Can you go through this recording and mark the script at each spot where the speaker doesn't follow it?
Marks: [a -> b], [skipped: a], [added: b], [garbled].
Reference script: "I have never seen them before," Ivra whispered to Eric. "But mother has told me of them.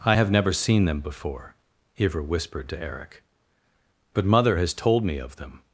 "I have never seen them before," Ivra whispered to Eric. "But mother has told me of them.